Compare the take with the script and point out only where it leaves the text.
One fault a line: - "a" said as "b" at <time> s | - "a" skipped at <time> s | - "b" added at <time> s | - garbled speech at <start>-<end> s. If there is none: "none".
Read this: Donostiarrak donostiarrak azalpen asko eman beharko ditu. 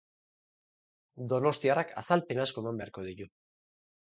- "donostiarrak" skipped at 1.9 s